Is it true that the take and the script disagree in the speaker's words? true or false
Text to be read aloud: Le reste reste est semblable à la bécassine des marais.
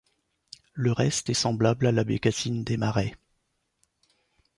true